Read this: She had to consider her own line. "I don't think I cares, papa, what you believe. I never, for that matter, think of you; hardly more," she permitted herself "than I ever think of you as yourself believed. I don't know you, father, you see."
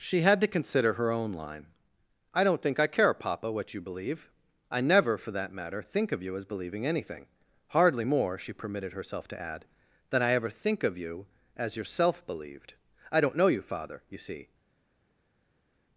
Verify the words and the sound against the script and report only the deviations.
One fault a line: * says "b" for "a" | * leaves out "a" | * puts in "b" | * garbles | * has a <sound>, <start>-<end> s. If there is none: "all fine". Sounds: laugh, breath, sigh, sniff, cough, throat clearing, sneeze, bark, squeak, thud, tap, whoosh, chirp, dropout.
* says "care" for "cares"
* puts in "as believing anything"
* puts in "to add"